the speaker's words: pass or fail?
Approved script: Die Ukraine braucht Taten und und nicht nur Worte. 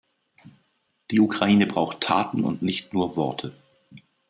fail